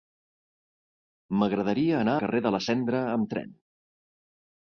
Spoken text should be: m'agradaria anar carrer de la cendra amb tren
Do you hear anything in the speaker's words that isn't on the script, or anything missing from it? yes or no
no